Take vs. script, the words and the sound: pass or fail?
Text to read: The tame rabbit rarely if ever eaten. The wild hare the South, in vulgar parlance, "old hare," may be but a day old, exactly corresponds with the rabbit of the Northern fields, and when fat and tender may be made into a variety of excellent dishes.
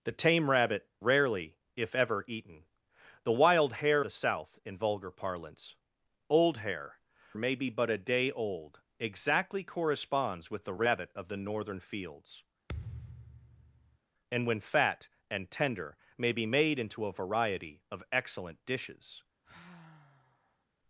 fail